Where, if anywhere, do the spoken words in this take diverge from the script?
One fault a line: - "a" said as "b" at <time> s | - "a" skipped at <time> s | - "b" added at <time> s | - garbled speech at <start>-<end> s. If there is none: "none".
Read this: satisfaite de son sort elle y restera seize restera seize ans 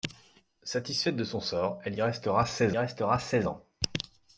none